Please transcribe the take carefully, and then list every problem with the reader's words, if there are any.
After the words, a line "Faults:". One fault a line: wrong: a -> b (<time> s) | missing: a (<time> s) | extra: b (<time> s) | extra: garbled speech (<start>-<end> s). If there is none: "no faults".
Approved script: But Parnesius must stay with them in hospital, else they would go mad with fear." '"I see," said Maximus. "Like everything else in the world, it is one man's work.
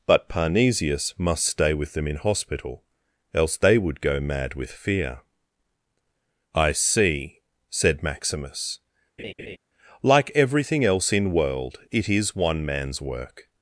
But Parnesius must stay with them in hospital, else they would go mad with fear." '"I see," said Maximus. "Like everything else in world, it is one man's work.
Faults:
missing: the (11.3 s)